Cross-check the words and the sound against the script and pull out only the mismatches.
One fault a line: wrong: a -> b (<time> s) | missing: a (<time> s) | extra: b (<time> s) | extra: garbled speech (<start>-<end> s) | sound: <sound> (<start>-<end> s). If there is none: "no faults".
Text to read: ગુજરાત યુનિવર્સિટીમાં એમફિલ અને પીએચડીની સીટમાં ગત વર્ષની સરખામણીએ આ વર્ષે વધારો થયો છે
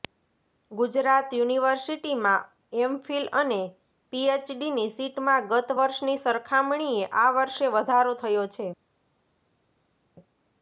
no faults